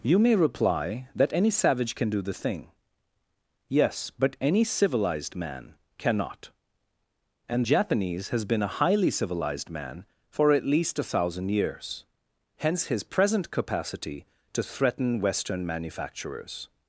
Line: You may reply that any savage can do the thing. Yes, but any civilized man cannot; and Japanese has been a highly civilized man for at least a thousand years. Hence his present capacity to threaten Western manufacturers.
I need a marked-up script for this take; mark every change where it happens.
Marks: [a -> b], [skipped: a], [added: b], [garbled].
You may reply that any savage can do the thing. Yes, but any civilized man cannot; and Japanese has been a highly civilized man for at least a thousand years. Hence his present capacity to threaten Western manufacturers.